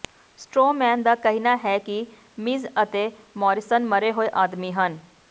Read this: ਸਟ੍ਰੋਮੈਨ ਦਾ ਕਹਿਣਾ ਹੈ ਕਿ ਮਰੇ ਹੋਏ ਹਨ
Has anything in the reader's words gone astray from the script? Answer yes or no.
yes